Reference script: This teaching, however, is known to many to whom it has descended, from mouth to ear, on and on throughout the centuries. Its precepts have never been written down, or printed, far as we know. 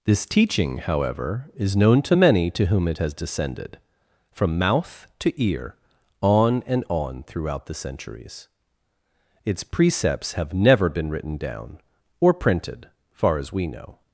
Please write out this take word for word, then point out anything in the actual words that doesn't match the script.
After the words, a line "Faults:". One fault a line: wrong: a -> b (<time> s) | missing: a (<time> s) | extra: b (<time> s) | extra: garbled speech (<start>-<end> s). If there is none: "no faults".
This teaching, however, is known to many to whom it has descended, from mouth to ear, on and on throughout the centuries. Its precepts have never been written down, or printed, far as we know.
Faults:
no faults